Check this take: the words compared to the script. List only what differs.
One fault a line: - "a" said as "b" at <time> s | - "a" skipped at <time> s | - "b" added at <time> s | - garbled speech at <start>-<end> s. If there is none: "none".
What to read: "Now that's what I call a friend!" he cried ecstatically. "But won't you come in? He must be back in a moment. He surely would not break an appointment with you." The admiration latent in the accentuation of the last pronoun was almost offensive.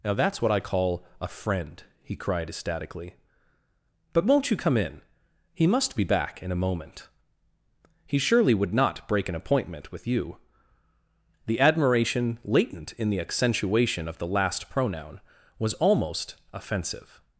none